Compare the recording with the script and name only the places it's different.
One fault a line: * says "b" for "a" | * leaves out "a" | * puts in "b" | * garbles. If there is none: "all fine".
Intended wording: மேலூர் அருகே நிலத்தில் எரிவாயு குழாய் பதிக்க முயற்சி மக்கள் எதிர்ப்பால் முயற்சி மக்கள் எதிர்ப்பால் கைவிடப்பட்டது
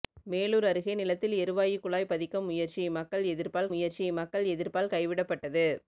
all fine